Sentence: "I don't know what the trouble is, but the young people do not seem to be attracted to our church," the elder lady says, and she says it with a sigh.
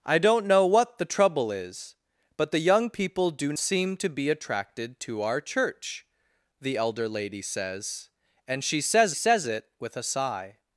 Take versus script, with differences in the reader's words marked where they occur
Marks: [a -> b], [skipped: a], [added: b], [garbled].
"I don't know what the trouble is, but the young people do [skipped: not] seem to be attracted to our church," the elder lady says, and she says [added: says] it with a sigh.